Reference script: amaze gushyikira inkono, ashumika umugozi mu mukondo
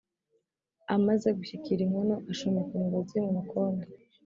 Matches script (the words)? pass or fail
pass